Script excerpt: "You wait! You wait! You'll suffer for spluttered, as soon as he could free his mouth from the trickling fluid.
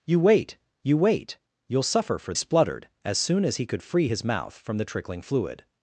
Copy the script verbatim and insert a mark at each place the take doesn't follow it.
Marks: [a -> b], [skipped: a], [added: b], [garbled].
"You wait! You wait! You'll suffer for spluttered, as soon as he could free his mouth from the trickling fluid.